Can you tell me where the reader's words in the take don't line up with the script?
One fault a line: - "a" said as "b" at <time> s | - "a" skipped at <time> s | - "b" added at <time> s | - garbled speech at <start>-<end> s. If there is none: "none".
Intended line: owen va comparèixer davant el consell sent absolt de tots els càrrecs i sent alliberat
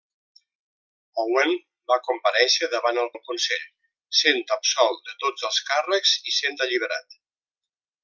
- "el" added at 3.1 s